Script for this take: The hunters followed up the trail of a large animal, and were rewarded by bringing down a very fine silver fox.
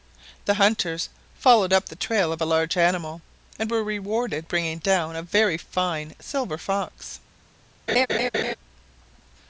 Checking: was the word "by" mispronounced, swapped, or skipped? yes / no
yes